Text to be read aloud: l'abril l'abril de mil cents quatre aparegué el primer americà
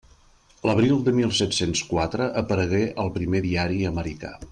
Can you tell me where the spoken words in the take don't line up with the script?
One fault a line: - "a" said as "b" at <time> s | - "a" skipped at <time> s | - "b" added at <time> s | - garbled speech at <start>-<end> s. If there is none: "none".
- "l'abril" skipped at 1.0 s
- "set" added at 1.4 s
- "diari" added at 3.5 s